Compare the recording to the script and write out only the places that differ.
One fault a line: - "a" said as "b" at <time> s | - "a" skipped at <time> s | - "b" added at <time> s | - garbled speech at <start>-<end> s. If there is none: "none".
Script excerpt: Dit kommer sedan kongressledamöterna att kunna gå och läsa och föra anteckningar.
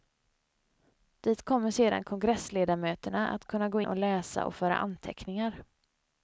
none